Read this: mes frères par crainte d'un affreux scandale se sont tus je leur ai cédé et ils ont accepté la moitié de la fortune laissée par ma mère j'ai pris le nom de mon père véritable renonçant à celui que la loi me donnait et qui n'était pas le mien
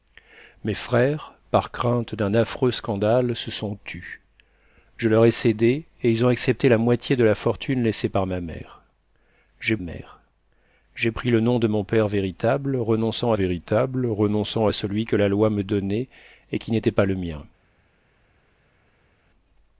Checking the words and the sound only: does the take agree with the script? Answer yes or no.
no